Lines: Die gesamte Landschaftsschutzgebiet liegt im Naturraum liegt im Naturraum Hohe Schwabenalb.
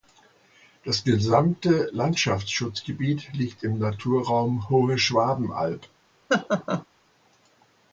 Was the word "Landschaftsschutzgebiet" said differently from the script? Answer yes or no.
no